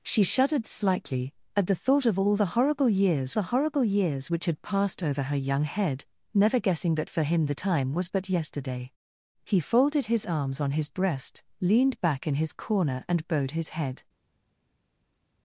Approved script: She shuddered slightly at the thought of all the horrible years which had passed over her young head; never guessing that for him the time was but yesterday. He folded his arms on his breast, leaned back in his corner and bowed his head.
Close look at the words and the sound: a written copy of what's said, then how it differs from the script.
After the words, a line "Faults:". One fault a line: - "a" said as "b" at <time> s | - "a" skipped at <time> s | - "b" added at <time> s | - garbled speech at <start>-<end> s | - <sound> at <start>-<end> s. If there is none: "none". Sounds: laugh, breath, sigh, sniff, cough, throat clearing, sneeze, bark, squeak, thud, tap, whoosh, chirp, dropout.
She shuddered slightly at the thought of all the horrible years the horrible years which had passed over her young head; never guessing that for him the time was but yesterday. He folded his arms on his breast, leaned back in his corner and bowed his head.
Faults:
- "the horrible years" added at 3.3 s